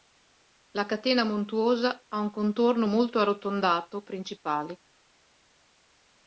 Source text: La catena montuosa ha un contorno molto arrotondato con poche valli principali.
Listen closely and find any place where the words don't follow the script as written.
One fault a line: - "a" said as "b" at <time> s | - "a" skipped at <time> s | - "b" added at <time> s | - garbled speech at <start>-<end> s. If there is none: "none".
- "con poche valli" skipped at 4.1 s